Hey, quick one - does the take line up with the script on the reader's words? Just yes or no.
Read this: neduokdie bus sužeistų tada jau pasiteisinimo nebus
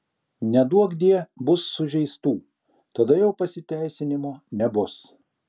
yes